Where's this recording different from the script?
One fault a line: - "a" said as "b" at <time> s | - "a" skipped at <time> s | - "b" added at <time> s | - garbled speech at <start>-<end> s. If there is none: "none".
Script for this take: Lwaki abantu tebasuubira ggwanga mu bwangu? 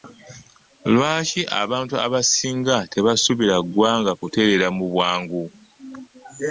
- "abasinga" added at 2.0 s
- "kutereera" added at 4.2 s